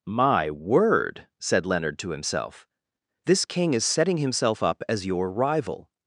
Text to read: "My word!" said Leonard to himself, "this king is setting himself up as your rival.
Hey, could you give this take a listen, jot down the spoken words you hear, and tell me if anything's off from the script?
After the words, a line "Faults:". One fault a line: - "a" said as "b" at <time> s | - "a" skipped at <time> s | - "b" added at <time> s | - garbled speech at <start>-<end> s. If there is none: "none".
"My word!" said Leonard to himself, "this king is setting himself up as your rival.
Faults:
none